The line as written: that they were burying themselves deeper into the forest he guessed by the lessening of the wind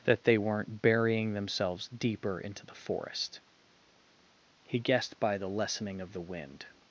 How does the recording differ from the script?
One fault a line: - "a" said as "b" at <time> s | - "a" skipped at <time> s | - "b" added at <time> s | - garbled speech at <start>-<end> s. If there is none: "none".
- "were" said as "weren't" at 0.4 s